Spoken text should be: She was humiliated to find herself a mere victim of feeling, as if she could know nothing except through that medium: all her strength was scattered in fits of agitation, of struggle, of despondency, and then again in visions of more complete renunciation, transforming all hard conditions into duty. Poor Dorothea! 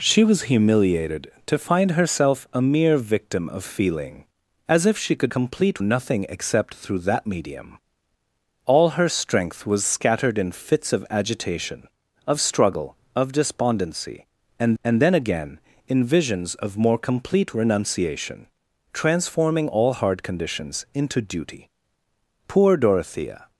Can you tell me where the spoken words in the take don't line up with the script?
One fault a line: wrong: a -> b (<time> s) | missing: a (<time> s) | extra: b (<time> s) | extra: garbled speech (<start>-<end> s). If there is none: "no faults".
wrong: know -> complete (5.3 s)
extra: and (14.8 s)